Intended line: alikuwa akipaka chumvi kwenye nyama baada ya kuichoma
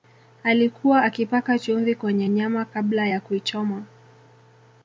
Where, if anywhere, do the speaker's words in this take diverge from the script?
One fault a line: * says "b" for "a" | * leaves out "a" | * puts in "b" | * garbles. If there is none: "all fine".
* says "kabla" for "baada"